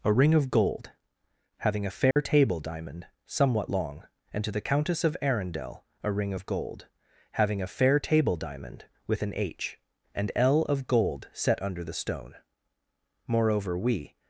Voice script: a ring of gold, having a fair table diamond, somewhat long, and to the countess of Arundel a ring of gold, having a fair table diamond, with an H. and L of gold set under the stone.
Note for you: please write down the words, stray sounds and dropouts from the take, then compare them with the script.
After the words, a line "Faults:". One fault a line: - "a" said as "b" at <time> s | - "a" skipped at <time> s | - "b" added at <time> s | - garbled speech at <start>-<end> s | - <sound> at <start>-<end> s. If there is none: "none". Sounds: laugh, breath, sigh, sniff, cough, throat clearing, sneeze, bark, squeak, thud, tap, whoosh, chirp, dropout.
a ring of gold, having a fair table diamond, somewhat long, and to the countess of Arundel a ring of gold, having a fair table diamond, with an H. and L of gold set under the stone. Moreover, we
Faults:
- dropout at 2.1-2.2 s
- "Moreover we" added at 13.3 s